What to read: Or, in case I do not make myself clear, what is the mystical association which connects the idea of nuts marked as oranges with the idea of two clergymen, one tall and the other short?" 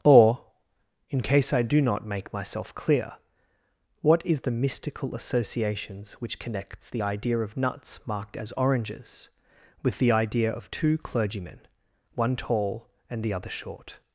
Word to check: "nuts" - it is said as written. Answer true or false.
true